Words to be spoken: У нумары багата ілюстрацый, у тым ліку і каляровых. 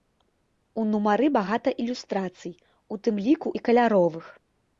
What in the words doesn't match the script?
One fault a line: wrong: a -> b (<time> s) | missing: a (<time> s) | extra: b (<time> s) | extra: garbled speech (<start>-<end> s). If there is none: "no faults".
no faults